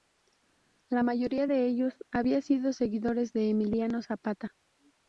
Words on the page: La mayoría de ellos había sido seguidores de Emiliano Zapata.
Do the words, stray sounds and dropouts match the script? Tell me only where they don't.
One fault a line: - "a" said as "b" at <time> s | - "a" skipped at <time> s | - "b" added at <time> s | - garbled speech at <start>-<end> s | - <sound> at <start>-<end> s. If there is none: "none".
none